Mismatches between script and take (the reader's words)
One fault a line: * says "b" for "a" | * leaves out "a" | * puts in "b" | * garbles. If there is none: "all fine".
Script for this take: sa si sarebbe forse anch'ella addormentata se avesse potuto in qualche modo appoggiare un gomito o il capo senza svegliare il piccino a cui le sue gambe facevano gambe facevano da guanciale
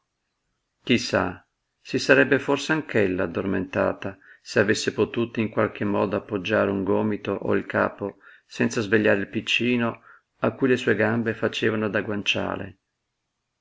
* leaves out "gambe facevano"